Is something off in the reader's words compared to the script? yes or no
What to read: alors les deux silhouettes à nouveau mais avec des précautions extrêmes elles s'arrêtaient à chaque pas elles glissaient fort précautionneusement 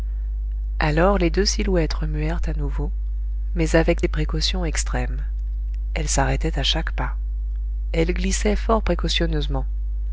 yes